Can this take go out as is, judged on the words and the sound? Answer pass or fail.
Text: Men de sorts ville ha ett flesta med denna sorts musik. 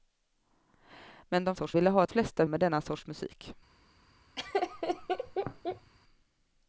fail